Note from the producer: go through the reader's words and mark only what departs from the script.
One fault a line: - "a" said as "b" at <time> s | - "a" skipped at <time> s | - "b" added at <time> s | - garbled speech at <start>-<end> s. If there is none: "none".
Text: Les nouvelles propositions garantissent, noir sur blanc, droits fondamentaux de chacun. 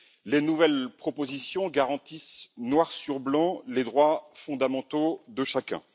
- "les" added at 3.7 s